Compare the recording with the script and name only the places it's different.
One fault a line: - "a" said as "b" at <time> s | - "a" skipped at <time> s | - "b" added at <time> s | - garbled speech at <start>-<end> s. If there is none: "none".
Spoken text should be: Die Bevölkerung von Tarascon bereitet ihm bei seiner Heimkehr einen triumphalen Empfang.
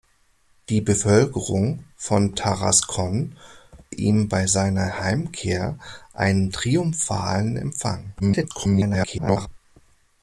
- "bereitet" skipped at 3.4 s
- garbled speech at 8.2-9.5 s